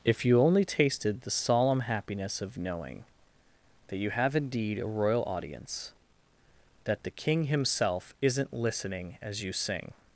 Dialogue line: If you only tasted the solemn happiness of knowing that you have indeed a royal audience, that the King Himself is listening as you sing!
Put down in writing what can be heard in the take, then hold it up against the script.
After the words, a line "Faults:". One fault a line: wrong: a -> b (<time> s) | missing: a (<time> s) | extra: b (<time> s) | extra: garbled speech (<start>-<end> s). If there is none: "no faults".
If you only tasted the solemn happiness of knowing that you have indeed a royal audience, that the King Himself isn't listening as you sing!
Faults:
wrong: is -> isn't (8.2 s)